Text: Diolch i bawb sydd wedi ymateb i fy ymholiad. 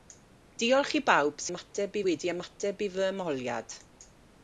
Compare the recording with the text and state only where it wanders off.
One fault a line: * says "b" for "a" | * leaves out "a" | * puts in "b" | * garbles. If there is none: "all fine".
* says "ymateb" for "sydd"